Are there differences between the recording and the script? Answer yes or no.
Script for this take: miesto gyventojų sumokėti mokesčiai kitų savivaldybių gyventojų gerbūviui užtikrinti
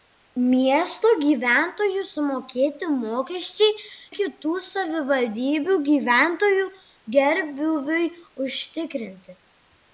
no